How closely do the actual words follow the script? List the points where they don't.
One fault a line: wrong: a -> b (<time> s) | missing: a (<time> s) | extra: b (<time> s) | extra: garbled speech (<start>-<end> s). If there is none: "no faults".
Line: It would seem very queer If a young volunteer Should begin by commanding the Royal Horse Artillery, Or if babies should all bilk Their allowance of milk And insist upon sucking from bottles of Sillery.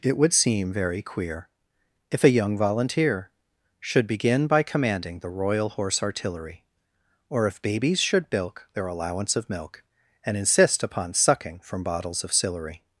missing: all (8.3 s)